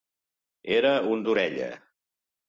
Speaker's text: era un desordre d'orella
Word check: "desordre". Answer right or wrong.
wrong